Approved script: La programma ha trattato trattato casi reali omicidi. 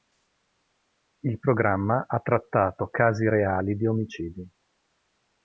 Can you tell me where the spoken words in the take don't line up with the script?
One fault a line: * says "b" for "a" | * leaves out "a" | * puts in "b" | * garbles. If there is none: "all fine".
* says "Il" for "La"
* leaves out "trattato"
* puts in "di"